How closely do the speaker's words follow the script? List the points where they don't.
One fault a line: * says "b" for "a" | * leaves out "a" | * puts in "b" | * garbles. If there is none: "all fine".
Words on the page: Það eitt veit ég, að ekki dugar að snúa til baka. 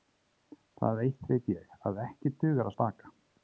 * leaves out "snúa til"